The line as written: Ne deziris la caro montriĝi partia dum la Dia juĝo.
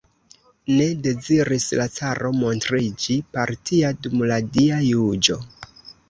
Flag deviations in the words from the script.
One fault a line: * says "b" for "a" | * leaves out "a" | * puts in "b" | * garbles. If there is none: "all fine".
all fine